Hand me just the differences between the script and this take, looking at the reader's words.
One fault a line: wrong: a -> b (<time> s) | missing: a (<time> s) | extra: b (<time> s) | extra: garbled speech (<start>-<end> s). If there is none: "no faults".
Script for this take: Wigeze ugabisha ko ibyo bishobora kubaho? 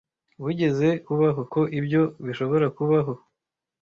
wrong: ugabisha -> kubaho (1.1 s)